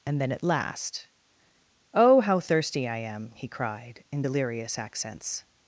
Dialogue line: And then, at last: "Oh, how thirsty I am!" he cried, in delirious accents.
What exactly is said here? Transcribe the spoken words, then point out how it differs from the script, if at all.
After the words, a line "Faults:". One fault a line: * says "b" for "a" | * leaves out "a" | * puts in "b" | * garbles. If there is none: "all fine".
And then, at last: "Oh, how thirsty I am!" he cried, in delirious accents.
Faults:
all fine